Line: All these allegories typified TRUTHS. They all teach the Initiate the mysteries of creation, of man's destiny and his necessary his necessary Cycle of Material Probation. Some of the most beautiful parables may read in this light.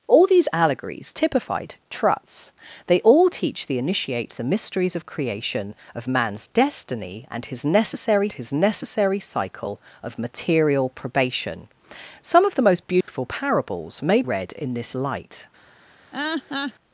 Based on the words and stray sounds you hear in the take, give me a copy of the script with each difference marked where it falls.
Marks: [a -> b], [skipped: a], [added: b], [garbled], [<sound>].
All these allegories typified TRUTHS. They all teach the Initiate the mysteries of creation, of man's destiny and his necessary his necessary Cycle of Material Probation. Some of the most beautiful [dropout] parables may read in this light. [laugh]